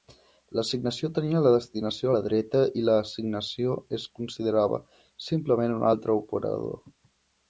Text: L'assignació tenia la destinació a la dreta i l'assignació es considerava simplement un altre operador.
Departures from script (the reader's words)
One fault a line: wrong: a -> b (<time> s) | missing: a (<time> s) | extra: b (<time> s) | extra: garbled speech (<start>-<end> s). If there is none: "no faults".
no faults